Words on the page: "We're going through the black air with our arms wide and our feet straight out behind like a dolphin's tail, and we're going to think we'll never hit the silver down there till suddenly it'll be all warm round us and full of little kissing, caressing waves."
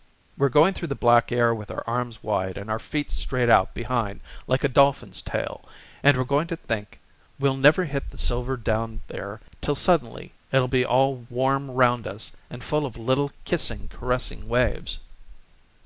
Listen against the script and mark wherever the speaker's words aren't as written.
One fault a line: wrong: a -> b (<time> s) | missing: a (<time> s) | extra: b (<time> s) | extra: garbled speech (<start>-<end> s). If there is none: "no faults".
no faults